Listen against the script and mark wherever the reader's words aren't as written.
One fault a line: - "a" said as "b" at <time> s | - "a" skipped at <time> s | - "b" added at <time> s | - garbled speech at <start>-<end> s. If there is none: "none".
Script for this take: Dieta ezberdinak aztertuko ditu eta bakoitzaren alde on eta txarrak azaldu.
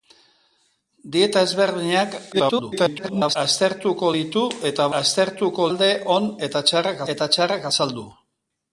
- garbled speech at 2.3-3.4 s
- "bakoitzaren" said as "aztertuko" at 5.0 s
- "eta txarrak" added at 7.1 s